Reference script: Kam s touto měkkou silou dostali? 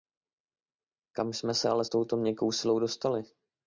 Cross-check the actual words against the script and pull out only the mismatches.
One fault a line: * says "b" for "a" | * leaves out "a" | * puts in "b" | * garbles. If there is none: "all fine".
* puts in "jsme se ale"